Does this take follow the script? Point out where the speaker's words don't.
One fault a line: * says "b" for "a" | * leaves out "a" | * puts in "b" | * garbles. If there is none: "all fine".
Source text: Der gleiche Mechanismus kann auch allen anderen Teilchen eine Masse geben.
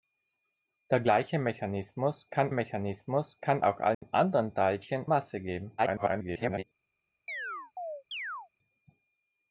* puts in "Mechanismus kann"
* leaves out "eine"
* garbles